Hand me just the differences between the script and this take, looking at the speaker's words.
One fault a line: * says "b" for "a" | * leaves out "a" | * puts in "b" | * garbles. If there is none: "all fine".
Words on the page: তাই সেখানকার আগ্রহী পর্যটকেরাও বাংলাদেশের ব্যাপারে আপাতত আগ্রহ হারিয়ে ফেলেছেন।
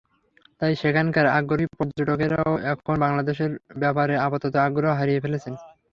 * puts in "এখন"